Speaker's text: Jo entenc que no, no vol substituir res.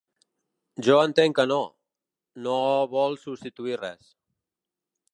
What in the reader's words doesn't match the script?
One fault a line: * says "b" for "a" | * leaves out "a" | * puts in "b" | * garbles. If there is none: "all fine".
all fine